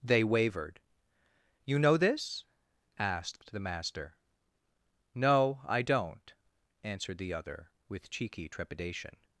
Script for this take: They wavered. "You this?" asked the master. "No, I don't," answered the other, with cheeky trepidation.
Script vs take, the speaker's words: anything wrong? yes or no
yes